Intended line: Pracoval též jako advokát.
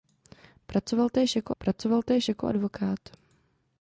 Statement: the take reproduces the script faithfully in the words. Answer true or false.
false